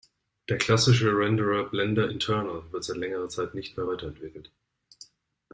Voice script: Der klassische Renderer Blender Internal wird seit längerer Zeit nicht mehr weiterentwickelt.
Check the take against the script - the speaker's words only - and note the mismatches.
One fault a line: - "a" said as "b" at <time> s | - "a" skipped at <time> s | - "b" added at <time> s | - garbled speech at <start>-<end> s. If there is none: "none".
none